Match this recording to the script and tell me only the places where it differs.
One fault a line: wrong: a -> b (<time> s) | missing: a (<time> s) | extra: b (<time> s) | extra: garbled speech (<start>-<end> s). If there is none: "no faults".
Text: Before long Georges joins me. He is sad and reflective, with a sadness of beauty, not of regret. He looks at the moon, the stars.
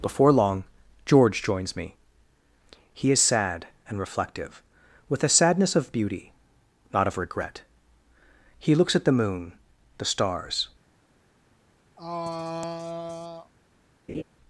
wrong: Georges -> George (1.1 s)